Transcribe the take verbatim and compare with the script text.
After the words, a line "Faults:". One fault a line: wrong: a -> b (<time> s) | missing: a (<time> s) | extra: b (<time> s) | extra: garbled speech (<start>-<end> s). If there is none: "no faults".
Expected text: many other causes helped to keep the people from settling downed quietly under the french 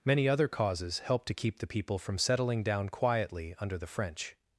many other causes helped to keep the people from settling down quietly under the french
Faults:
wrong: downed -> down (2.6 s)